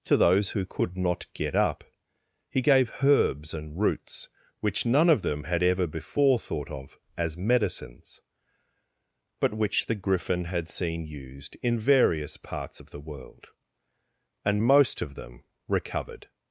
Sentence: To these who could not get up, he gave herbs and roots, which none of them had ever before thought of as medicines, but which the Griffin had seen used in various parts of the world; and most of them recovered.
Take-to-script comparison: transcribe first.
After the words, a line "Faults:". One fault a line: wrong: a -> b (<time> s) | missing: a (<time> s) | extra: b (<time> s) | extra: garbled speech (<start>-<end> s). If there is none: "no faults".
To those who could not get up, he gave herbs and roots, which none of them had ever before thought of as medicines, but which the Griffin had seen used in various parts of the world; and most of them recovered.
Faults:
wrong: these -> those (0.2 s)